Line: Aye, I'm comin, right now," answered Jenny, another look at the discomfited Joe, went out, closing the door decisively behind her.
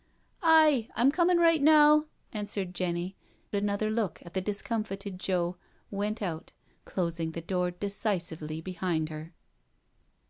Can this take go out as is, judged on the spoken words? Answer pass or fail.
pass